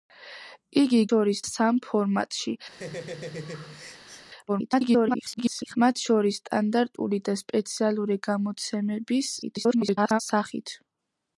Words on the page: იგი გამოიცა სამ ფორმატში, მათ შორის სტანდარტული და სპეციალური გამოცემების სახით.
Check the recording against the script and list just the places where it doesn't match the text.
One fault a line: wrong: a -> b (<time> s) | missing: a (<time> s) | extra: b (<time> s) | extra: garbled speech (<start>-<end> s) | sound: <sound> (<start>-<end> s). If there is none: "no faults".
wrong: გამოიცა -> შორის (1.1 s)
sound: laugh (2.7-4.3 s)
extra: garbled speech (4.5-5.8 s)
extra: garbled speech (9.4-10.2 s)